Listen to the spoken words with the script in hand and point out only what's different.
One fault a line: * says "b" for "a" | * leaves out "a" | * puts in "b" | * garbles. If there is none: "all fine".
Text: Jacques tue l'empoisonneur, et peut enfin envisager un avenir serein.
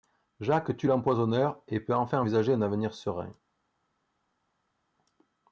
all fine